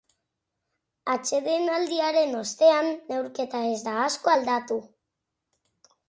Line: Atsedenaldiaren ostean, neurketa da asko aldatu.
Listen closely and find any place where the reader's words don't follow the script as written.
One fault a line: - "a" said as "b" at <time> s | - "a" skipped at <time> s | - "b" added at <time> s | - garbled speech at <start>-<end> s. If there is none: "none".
- "ez" added at 3.7 s